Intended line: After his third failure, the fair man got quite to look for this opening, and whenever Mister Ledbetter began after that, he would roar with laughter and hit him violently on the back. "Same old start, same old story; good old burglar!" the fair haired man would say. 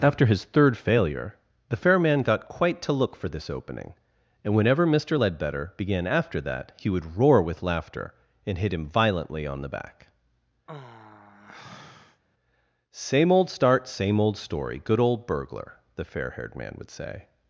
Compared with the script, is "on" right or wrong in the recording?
right